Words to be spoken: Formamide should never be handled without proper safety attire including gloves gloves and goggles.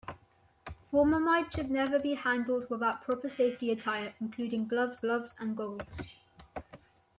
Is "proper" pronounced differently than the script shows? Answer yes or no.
no